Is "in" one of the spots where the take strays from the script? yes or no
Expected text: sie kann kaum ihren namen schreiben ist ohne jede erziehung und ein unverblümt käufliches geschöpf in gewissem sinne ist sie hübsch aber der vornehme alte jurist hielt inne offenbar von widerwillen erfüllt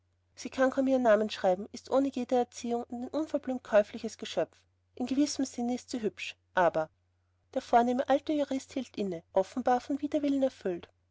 no